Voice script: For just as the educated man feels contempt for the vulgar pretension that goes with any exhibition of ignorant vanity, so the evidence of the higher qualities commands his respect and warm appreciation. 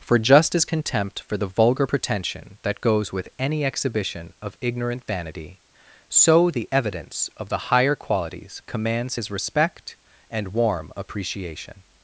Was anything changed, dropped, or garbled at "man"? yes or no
yes